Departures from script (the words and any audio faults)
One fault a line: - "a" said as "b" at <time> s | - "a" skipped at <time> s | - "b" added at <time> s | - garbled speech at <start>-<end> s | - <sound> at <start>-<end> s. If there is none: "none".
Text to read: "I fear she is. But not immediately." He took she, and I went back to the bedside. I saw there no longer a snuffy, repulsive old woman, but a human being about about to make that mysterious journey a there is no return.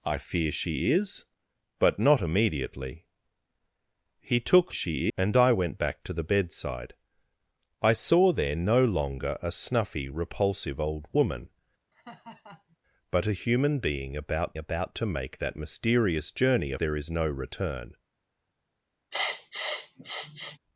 - laugh at 11.9-12.8 s
- sniff at 19.1-20.6 s